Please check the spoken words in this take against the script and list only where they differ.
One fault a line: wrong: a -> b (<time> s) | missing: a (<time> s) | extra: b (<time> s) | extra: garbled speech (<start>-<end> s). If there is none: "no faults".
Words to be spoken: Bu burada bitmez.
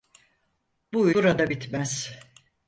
no faults